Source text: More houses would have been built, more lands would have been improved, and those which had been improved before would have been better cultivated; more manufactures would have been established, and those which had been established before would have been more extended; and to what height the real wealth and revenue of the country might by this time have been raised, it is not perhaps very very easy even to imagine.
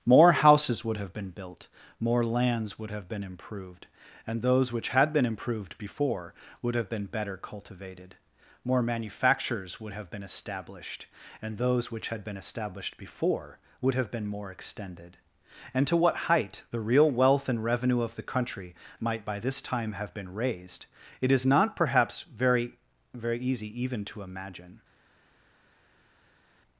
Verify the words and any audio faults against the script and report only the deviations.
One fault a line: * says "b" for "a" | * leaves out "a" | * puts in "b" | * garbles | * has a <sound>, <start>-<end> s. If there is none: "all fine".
all fine